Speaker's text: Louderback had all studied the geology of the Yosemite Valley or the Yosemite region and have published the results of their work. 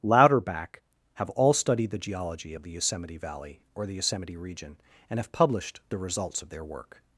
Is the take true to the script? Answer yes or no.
no